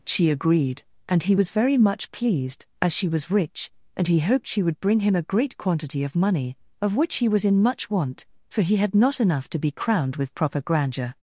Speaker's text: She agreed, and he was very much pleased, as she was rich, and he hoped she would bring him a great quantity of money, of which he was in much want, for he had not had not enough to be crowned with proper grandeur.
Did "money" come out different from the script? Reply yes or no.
no